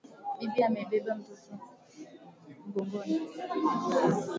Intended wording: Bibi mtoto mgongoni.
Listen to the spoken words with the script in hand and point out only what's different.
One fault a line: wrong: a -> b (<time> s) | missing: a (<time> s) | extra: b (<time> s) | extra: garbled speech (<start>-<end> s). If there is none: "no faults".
extra: amebeba (0.7 s)